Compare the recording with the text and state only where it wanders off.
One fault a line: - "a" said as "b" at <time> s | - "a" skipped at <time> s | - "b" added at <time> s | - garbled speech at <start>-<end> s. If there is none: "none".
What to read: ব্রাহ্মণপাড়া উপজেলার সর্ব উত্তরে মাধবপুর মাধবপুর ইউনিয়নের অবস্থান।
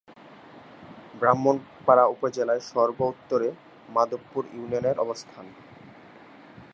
- "মাধবপুর" skipped at 4.4 s